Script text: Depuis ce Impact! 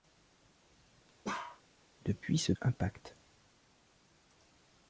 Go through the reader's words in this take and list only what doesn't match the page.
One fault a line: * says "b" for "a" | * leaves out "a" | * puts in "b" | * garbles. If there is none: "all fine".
all fine